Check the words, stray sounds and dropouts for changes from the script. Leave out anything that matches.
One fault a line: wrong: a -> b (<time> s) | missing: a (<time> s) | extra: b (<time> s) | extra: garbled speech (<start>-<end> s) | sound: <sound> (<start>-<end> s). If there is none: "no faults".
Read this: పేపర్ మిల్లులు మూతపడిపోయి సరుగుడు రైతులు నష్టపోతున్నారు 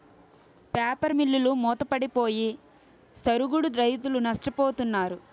no faults